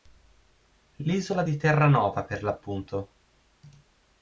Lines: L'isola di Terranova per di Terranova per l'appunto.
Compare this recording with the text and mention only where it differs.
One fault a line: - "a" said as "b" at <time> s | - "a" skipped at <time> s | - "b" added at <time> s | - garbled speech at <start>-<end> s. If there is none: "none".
- "di Terranova per" skipped at 2.4 s